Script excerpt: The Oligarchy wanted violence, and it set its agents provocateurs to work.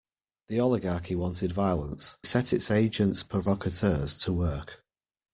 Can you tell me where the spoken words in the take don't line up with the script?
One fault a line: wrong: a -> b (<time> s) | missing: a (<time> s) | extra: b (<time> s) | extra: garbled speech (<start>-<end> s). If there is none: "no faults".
missing: and it (2.2 s)